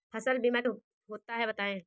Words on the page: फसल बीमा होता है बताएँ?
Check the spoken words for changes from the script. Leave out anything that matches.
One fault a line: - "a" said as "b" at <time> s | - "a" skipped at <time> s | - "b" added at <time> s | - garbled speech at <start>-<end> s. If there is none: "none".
none